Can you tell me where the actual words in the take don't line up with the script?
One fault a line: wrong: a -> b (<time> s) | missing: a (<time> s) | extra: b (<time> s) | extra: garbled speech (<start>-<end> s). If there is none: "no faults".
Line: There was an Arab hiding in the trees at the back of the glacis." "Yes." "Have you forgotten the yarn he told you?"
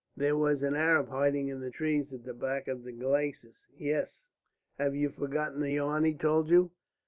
no faults